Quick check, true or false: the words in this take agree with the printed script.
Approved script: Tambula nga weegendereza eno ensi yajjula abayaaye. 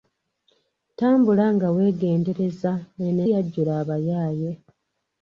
false